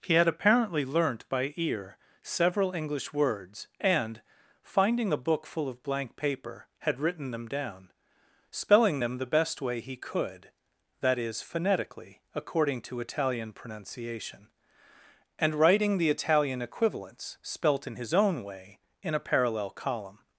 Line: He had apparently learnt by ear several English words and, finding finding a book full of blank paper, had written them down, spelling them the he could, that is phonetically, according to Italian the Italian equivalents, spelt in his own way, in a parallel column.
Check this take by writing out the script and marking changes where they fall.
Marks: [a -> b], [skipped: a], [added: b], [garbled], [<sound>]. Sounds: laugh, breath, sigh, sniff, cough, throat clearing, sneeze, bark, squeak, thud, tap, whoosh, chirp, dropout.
He had apparently learnt by ear several English words and, finding [skipped: finding] a book full of blank paper, had written them down, spelling them the [added: best way] he could, that is phonetically, according to Italian [added: pronunciation and writing] the Italian equivalents, spelt in his own way, in a parallel column.